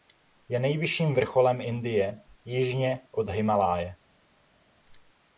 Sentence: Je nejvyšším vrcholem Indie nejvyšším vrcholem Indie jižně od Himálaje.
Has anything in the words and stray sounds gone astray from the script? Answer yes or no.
yes